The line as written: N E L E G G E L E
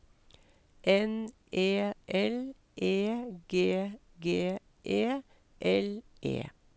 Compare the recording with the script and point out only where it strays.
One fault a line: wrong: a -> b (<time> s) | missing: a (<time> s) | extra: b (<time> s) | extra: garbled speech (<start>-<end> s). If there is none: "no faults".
no faults